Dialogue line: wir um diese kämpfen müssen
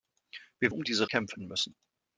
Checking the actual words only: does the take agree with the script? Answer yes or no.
yes